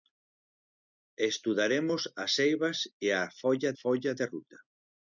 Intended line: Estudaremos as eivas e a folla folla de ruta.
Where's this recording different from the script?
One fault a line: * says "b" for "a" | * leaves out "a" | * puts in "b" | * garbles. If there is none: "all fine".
all fine